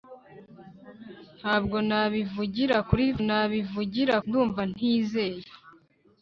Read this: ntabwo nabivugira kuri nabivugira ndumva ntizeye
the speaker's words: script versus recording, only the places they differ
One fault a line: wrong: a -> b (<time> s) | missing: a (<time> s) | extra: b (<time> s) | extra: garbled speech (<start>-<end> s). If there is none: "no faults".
no faults